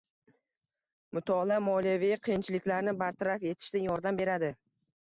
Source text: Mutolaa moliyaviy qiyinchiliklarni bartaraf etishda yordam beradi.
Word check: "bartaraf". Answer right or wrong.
right